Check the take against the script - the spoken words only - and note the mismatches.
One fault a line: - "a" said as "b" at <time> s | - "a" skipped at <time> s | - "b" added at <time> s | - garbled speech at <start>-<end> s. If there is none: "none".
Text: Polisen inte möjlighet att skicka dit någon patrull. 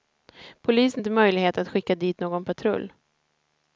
none